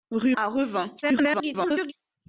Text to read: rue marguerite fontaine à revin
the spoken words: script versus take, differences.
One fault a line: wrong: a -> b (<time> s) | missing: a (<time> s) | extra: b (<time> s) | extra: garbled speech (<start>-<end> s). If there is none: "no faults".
missing: marguerite fontaine (0.3 s)
extra: garbled speech (1.0-1.9 s)